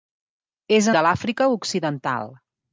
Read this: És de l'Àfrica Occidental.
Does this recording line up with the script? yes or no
yes